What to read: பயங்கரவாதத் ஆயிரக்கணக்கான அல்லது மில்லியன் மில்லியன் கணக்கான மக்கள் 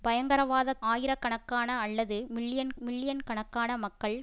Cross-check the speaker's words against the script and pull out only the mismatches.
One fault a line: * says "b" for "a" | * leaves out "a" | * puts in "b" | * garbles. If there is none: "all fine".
all fine